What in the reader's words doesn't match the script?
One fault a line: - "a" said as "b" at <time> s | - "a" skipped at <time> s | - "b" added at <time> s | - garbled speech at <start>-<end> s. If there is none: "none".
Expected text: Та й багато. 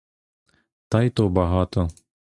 - "то" added at 1.1 s